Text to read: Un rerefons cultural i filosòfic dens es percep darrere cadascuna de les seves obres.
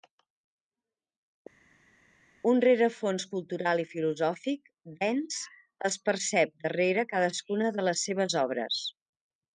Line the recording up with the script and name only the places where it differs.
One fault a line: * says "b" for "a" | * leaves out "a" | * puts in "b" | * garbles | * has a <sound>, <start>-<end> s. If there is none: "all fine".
all fine